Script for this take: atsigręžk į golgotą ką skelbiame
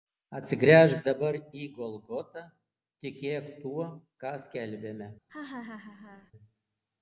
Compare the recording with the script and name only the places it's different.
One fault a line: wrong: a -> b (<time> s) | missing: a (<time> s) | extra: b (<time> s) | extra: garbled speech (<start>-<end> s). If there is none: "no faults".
extra: dabar (1.1 s)
extra: tikėk tuo (3.1 s)